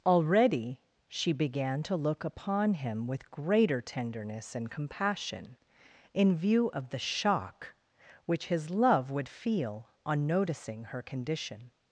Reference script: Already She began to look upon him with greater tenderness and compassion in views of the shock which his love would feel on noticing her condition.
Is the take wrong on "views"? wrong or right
wrong